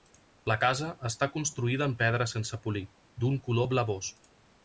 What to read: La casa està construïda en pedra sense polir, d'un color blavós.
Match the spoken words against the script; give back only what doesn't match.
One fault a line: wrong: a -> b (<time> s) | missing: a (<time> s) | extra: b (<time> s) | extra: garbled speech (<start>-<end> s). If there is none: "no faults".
no faults